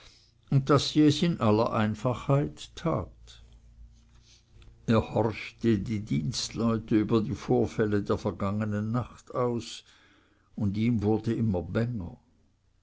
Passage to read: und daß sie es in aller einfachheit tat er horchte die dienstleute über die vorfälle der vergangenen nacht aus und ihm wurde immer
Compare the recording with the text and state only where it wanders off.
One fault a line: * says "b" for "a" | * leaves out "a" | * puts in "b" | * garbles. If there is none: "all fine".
all fine